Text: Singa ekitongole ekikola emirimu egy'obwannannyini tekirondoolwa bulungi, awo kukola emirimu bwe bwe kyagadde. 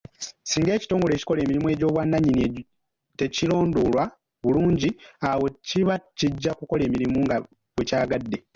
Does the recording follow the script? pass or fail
fail